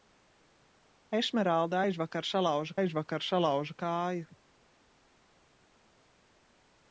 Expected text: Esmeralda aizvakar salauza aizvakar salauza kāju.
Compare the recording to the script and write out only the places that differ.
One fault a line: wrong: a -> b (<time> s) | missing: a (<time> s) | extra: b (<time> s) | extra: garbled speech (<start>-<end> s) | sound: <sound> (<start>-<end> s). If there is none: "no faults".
no faults